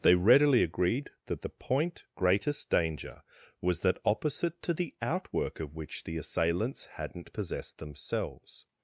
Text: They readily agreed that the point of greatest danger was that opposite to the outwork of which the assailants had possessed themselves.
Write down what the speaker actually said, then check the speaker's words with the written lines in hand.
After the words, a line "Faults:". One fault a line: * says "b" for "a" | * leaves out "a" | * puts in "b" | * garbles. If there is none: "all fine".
They readily agreed that the point greatest danger was that opposite to the outwork of which the assailants hadn't possessed themselves.
Faults:
* leaves out "of"
* says "hadn't" for "had"